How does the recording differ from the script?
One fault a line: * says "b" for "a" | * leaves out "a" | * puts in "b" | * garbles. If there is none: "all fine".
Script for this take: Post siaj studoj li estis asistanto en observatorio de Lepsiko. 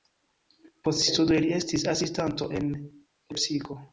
* leaves out "siaj"
* leaves out "observatorio de"